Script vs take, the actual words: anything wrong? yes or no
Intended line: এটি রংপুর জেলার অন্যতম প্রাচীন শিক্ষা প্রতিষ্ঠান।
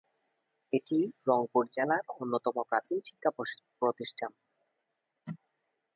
no